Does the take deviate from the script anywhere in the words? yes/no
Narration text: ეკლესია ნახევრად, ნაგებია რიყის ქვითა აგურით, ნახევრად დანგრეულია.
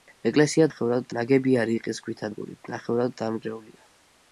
no